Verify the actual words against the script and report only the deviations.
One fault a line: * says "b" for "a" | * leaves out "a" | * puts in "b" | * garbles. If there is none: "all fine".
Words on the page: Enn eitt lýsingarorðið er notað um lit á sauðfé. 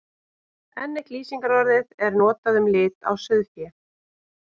all fine